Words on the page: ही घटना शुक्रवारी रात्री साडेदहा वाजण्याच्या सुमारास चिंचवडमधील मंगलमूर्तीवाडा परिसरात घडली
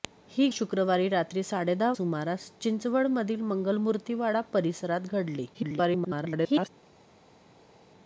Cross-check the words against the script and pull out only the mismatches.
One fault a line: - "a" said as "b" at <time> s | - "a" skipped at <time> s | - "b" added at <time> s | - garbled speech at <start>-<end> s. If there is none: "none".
- "घटना" skipped at 0.5 s
- "वाजण्याच्या" skipped at 1.9 s
- garbled speech at 5.5-6.7 s